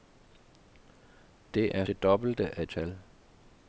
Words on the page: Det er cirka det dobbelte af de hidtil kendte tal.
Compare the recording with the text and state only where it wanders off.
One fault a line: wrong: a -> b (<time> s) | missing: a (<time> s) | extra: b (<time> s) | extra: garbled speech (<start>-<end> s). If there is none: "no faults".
missing: cirka (1.9 s)
missing: de hidtil kendte (2.7 s)